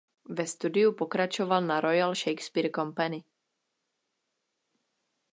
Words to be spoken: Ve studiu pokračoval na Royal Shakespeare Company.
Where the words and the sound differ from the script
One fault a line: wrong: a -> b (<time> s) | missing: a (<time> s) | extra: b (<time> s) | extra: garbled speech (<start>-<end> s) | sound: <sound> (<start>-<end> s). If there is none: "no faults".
no faults